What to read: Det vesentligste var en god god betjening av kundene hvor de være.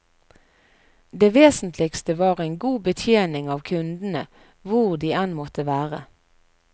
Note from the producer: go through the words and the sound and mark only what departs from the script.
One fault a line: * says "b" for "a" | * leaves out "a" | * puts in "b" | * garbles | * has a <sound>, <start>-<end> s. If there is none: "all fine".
* leaves out "god"
* puts in "enn måtte"